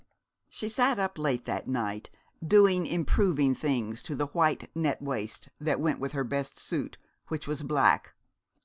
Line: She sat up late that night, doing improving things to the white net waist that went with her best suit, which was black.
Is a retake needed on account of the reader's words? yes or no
no